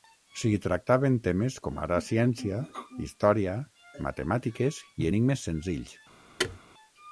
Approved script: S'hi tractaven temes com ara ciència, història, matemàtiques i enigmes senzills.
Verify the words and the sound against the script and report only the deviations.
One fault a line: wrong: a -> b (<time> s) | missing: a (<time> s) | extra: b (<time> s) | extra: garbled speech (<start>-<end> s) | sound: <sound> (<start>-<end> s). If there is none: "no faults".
sound: thud (6.4-6.6 s)